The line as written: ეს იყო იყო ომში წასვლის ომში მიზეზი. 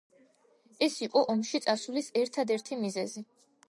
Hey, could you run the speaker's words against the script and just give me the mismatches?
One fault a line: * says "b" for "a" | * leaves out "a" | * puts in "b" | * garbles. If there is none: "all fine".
* leaves out "იყო"
* says "ერთადერთი" for "ომში"